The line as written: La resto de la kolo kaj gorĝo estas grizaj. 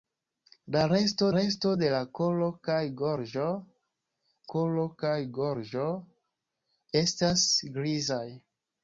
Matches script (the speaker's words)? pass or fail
fail